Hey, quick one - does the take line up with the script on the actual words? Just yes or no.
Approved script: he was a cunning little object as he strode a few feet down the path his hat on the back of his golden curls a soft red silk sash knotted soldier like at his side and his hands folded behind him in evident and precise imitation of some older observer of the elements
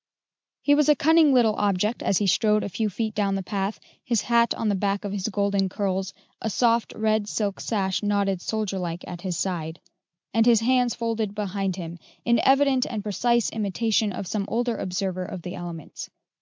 yes